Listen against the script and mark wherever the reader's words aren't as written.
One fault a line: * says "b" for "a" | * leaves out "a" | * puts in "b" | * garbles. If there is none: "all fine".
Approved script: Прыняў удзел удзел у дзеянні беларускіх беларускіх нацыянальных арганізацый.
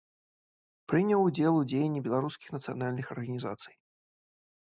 * leaves out "удзел"
* leaves out "беларускіх"